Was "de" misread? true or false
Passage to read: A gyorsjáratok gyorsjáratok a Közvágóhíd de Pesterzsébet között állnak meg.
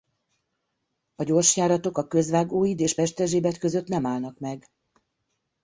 true